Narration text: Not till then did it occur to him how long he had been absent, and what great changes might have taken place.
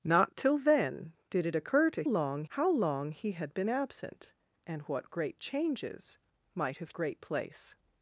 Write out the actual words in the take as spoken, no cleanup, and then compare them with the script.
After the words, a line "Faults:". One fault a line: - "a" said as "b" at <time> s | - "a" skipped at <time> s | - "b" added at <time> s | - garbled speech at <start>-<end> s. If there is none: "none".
Not till then did it occur to long how long he had been absent, and what great changes might have great place.
Faults:
- "him" said as "long" at 2.0 s
- "taken" said as "great" at 6.9 s